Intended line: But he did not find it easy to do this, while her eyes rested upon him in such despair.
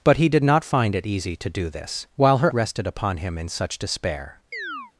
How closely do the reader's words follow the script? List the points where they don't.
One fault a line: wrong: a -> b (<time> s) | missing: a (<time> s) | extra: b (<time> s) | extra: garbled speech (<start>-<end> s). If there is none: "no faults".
missing: eyes (2.5 s)